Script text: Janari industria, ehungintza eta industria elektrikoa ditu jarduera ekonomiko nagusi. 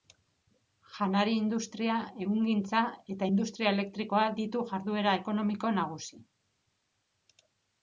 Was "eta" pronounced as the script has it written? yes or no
yes